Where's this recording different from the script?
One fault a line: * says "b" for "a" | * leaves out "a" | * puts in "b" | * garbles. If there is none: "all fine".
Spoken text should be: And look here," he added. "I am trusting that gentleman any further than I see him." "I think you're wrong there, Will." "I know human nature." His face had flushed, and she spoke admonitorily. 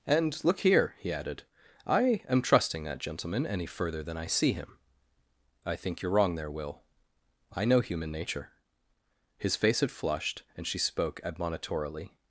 all fine